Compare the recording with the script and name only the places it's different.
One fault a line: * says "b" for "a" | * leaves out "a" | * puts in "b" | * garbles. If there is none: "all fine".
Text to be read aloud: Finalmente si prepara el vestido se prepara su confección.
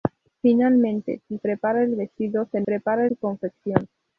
all fine